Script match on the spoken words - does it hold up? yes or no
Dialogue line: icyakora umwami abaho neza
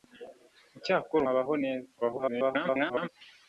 no